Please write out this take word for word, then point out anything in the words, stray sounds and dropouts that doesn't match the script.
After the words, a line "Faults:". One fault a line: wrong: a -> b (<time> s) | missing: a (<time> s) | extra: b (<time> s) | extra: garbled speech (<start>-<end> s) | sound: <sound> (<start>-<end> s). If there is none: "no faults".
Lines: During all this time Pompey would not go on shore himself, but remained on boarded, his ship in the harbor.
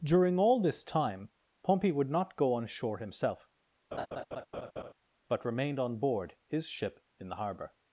During all this time Pompey would not go on shore himself, but remained on board, his ship in the harbor.
Faults:
sound: laugh (3.9-4.9 s)
wrong: boarded -> board (6.0 s)